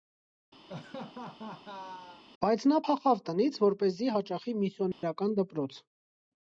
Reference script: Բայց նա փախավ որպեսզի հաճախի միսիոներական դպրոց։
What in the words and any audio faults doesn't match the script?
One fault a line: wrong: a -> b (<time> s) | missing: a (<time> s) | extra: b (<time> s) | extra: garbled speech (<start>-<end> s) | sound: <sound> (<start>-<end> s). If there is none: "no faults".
sound: laugh (0.7-2.2 s)
extra: տնից (3.3 s)
sound: dropout (4.9-5.0 s)